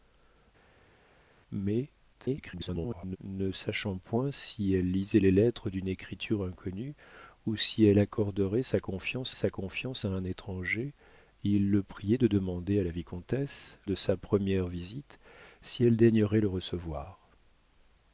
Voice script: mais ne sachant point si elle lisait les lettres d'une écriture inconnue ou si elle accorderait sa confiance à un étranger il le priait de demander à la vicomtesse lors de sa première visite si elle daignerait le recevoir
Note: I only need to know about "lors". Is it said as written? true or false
false